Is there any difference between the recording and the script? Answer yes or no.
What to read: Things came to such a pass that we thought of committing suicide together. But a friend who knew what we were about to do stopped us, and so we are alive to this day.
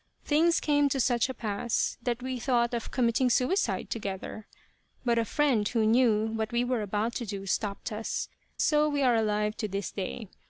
yes